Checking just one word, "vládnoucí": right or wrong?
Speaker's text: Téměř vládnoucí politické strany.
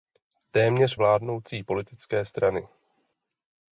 right